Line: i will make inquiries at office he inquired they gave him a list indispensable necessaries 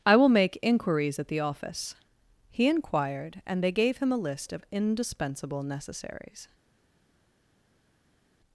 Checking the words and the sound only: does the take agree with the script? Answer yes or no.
no